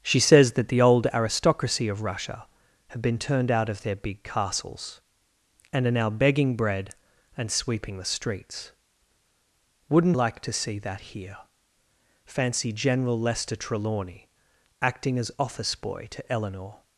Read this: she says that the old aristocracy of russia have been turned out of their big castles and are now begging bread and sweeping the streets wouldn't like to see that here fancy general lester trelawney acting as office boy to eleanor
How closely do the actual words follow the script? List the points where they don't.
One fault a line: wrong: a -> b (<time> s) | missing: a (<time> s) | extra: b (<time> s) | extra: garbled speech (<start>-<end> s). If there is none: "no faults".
no faults